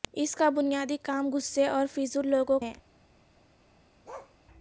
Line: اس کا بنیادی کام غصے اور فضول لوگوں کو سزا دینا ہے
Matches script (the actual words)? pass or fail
fail